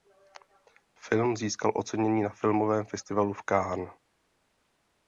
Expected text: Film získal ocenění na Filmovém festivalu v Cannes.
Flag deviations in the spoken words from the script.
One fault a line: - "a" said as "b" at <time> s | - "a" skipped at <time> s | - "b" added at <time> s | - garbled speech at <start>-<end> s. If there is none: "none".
none